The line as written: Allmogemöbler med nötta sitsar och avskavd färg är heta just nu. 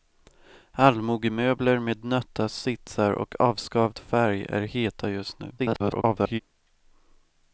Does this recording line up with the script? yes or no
no